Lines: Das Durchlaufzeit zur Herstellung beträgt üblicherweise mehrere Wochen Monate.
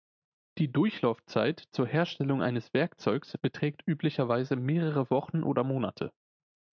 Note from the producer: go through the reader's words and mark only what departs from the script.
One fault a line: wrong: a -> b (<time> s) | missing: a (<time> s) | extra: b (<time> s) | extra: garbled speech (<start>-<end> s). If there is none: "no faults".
wrong: Das -> Die (0.6 s)
extra: eines Werkzeugs (2.4 s)
extra: oder (5.4 s)